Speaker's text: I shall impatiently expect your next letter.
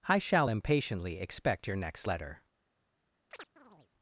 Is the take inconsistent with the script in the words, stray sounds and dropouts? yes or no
yes